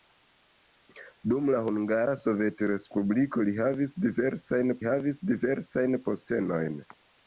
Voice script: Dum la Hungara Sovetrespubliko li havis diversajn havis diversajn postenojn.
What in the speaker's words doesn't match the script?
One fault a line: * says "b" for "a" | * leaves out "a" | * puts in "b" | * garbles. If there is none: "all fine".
all fine